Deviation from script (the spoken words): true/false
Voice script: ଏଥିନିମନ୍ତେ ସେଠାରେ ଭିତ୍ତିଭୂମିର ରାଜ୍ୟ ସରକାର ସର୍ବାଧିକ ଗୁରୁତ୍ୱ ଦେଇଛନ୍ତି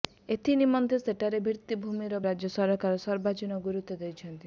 false